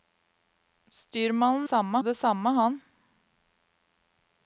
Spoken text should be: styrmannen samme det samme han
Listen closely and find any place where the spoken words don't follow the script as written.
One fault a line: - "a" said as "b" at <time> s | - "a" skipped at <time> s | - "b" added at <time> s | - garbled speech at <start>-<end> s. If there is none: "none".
none